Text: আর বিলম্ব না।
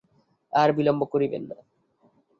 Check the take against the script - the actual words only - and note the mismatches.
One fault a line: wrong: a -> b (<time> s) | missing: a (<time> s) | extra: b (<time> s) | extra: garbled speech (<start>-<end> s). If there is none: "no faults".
extra: করিবেন (1.1 s)